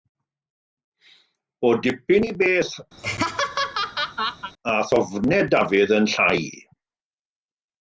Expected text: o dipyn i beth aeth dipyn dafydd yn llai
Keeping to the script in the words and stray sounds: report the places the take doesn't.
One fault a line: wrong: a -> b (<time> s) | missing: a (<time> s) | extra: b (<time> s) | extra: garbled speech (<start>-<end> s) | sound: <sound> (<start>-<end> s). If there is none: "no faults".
sound: laugh (3.0-4.5 s)
wrong: dipyn -> ofnau (5.0 s)